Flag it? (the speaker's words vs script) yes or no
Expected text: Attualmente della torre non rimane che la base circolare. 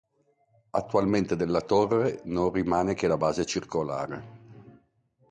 no